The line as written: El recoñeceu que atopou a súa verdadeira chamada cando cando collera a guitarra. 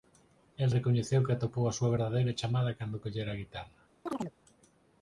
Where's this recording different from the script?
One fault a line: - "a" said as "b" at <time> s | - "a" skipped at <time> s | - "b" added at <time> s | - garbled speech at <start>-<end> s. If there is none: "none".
- "cando" skipped at 3.0 s